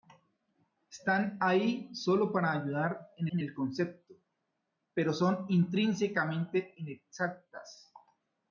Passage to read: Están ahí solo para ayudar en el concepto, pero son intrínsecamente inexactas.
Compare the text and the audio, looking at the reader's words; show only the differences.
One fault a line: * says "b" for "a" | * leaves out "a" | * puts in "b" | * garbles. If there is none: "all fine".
* puts in "en"